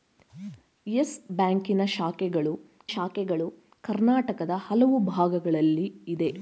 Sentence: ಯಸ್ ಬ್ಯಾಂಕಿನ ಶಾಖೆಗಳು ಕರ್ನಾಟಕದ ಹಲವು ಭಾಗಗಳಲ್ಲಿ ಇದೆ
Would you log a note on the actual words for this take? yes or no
yes